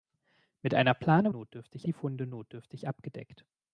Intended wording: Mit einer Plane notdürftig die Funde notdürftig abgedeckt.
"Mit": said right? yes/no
yes